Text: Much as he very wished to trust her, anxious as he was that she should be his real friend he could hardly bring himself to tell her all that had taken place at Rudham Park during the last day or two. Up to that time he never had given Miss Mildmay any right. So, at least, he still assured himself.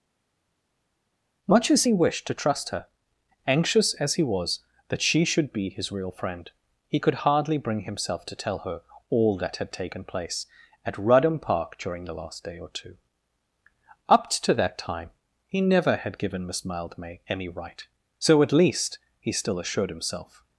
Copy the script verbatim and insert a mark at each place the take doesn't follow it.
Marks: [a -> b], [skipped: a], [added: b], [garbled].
Much as he [skipped: very] wished to trust her, anxious as he was that she should be his real friend he could hardly bring himself to tell her all that had taken place at Rudham Park during the last day or two. Up to that time he never had given Miss Mildmay any right. So, at least, he still assured himself.